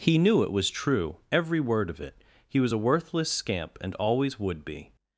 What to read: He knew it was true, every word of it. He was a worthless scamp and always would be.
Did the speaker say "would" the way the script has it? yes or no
yes